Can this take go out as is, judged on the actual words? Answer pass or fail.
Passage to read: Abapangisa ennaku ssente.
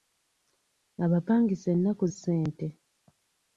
pass